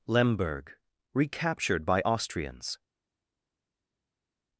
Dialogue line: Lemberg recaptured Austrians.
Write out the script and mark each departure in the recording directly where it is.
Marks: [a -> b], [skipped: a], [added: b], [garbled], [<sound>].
Lemberg recaptured [added: by] Austrians.